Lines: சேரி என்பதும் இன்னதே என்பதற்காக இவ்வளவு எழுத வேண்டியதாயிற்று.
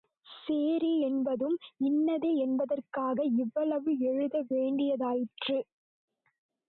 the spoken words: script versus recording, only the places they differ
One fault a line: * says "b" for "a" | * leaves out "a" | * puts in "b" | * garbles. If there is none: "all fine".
all fine